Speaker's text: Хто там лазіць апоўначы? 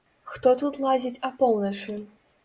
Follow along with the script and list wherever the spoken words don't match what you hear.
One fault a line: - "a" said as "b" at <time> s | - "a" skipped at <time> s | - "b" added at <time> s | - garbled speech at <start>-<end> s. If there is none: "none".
- "там" said as "тут" at 0.6 s